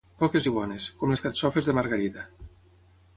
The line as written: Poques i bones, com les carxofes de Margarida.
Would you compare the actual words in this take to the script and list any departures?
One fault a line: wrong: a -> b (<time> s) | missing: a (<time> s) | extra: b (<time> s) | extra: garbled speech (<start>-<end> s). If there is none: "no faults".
no faults